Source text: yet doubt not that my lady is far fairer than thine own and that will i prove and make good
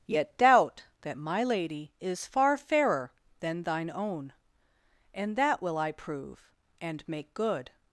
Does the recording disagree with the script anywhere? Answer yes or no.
yes